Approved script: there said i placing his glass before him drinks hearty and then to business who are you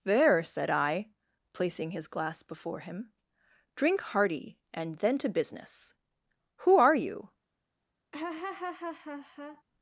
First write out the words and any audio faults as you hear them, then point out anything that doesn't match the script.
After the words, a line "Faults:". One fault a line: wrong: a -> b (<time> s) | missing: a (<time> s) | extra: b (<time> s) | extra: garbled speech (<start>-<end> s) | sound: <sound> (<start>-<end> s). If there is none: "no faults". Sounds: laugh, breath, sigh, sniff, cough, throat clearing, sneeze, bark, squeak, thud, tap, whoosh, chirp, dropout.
there said i placing his glass before him drink hearty and then to business who are you
Faults:
wrong: drinks -> drink (3.8 s)
sound: laugh (8.1-9.6 s)